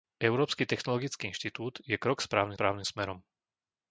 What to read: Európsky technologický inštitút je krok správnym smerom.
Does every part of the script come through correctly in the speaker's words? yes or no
no